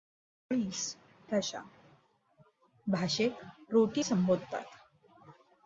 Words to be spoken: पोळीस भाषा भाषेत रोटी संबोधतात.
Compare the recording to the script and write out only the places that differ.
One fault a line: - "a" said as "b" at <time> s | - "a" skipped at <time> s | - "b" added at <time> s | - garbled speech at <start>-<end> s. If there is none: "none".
none